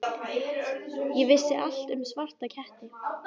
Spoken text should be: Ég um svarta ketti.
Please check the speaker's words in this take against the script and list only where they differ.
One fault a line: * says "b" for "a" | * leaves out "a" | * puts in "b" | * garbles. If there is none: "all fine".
* puts in "vissi allt"